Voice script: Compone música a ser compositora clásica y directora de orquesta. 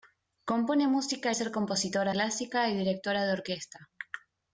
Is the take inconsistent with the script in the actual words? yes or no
no